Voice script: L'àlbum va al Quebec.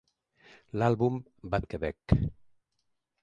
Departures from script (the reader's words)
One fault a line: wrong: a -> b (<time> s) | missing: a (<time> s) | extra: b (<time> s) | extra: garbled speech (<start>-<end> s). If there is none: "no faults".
no faults